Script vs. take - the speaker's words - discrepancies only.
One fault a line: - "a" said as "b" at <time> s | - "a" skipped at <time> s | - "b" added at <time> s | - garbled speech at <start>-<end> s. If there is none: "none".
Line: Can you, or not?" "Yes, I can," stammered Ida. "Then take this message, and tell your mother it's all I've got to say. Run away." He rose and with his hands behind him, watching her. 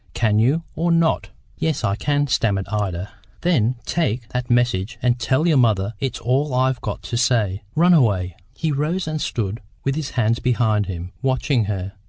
- "this" said as "that" at 4.3 s
- "stood" added at 9.2 s